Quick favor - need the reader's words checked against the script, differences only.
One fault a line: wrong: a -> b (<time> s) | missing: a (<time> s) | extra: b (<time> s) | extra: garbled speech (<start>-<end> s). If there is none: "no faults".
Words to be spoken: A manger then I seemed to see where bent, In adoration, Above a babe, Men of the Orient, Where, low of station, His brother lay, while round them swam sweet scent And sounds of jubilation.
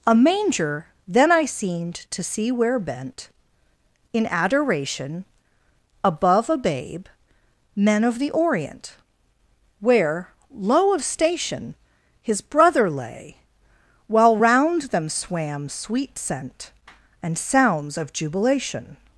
no faults